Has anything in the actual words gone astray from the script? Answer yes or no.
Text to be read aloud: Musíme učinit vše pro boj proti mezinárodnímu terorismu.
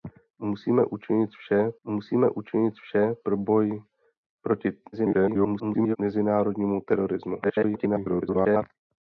yes